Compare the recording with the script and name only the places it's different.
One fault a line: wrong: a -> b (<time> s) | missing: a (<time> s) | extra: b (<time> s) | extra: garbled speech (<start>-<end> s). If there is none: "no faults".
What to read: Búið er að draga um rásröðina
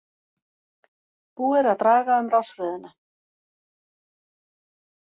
no faults